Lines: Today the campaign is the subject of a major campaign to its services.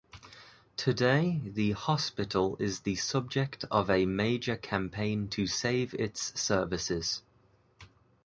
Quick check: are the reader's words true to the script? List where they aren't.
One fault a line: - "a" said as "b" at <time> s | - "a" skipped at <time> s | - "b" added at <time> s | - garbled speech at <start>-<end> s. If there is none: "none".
- "campaign" said as "hospital" at 1.7 s
- "save" added at 5.5 s